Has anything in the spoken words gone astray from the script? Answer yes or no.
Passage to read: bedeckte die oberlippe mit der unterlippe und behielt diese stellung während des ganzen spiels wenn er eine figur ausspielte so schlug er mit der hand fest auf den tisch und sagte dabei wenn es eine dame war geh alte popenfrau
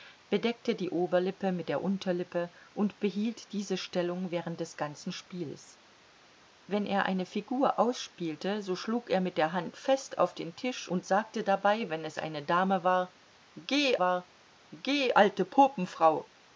yes